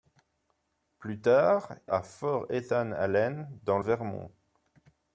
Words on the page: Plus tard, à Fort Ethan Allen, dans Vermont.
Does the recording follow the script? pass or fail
pass